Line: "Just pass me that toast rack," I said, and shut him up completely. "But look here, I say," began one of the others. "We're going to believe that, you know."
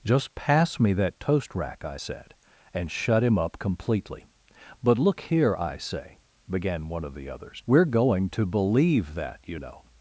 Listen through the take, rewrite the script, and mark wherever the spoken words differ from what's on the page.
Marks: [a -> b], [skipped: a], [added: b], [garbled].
"Just pass me that toast rack," I said, and shut him up completely. "But look here, I say," began one of the others. "We're going to believe that, you know."